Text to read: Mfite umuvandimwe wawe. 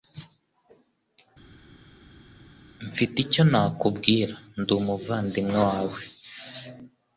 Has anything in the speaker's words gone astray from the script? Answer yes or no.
yes